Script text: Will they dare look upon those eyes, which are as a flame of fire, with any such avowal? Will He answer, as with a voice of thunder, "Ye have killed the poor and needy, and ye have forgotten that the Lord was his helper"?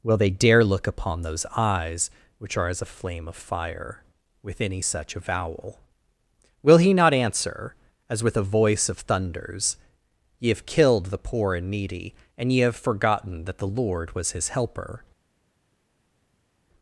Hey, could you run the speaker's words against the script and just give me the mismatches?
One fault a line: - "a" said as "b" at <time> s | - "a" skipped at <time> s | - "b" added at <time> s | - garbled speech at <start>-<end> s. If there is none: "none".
- "not" added at 6.9 s
- "thunder" said as "thunders" at 9.0 s